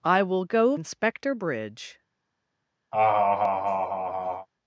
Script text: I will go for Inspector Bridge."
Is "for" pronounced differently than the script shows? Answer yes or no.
yes